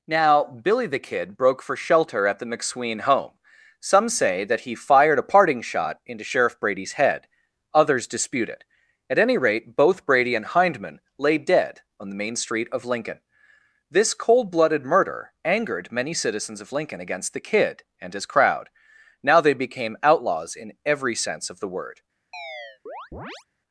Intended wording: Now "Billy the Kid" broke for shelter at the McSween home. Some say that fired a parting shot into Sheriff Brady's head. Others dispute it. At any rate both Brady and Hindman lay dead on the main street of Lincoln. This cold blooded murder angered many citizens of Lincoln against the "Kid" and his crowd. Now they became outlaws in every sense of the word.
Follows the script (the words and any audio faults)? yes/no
no